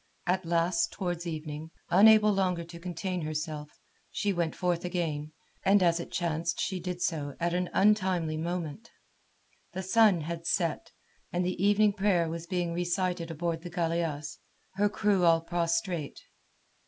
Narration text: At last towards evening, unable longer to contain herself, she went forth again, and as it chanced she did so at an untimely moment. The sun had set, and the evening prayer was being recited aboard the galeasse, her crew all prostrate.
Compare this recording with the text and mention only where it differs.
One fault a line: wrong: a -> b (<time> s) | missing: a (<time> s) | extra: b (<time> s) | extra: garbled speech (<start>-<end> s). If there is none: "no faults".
no faults